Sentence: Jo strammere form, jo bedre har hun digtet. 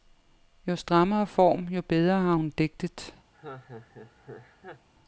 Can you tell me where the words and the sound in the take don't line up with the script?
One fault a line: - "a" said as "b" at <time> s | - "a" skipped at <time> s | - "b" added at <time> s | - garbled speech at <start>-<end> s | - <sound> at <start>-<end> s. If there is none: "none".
- laugh at 3.3-4.9 s